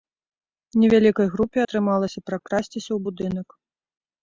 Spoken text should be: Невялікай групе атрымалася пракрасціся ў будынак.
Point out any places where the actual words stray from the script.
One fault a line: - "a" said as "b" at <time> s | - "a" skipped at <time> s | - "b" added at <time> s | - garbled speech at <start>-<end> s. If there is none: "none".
none